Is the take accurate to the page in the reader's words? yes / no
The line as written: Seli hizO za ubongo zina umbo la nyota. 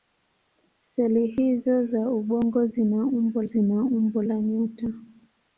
no